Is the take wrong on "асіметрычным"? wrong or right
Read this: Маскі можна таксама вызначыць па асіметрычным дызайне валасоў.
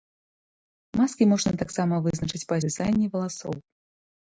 wrong